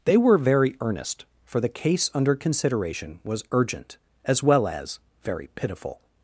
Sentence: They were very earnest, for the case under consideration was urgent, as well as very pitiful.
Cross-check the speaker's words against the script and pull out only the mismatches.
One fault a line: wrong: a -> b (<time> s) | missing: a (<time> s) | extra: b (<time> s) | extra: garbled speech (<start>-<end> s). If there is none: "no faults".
no faults